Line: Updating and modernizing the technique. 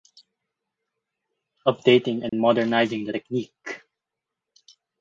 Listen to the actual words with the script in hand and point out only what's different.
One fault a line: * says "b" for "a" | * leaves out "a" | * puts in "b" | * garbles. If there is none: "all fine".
all fine